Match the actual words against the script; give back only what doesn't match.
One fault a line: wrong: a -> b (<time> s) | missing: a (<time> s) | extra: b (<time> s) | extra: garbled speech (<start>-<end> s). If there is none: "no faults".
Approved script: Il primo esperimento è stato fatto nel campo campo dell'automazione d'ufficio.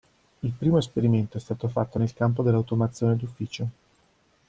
missing: campo (2.4 s)